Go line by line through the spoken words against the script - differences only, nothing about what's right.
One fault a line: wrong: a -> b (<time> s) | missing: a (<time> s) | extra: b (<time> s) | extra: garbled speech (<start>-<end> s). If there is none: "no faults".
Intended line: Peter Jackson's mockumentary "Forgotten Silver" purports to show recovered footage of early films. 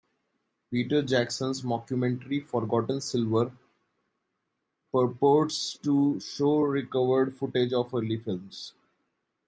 no faults